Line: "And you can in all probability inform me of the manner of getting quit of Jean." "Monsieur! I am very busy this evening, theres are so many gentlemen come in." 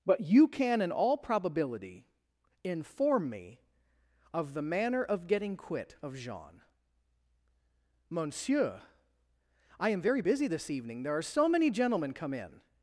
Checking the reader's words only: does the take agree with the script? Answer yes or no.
no